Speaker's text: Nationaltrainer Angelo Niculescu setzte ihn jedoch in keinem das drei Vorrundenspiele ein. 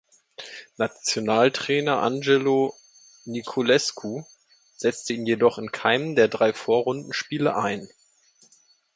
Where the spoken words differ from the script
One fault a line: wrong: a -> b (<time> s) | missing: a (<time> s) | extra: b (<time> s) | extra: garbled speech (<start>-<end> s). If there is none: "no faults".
wrong: das -> der (6.1 s)